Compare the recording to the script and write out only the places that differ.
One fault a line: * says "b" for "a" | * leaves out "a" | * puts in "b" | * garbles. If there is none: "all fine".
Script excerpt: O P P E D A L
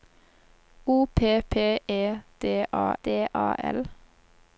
* puts in "D A"